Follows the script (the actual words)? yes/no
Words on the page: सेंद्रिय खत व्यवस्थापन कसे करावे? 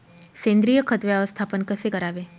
yes